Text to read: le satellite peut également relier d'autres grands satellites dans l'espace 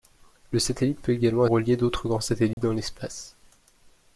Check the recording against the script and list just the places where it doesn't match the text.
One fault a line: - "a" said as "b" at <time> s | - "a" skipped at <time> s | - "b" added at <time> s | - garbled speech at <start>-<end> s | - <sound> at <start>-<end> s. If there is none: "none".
- dropout at 2.5-2.6 s